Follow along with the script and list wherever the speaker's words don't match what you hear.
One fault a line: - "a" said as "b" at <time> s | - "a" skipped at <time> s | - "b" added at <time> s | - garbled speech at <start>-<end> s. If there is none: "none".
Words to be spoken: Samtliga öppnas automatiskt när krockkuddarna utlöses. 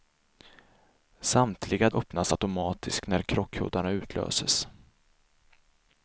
none